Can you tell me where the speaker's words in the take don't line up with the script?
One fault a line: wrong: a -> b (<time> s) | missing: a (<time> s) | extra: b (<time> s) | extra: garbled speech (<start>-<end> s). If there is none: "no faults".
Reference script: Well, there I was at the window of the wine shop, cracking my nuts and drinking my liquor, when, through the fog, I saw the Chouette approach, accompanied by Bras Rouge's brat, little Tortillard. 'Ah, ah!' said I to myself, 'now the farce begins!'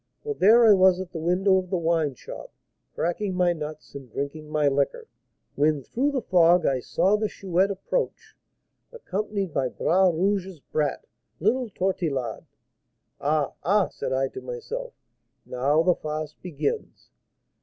no faults